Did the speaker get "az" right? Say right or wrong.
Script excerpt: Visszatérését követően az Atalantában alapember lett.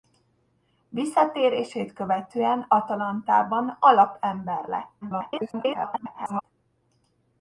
wrong